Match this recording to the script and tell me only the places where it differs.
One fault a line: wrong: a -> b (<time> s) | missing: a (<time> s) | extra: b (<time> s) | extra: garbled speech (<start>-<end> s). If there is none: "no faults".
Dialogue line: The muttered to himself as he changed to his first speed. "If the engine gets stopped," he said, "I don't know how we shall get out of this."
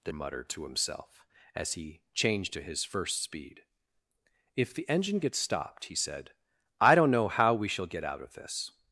no faults